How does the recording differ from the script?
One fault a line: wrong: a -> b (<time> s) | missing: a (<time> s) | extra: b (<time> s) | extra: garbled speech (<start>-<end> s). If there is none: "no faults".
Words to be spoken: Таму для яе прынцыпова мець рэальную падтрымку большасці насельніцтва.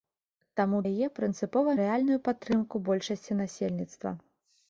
missing: для (0.8 s)
missing: мець (1.7 s)